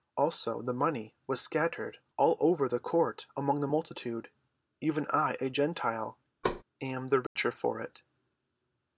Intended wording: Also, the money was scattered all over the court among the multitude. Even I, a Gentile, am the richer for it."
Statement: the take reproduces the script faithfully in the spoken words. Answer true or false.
true